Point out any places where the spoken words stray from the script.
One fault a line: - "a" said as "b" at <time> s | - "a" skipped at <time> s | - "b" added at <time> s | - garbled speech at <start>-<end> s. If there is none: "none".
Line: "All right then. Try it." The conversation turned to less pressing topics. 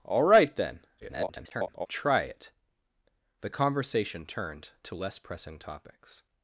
- garbled speech at 1.0-1.9 s